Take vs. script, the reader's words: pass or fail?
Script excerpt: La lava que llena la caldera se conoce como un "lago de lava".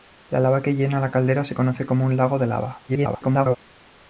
fail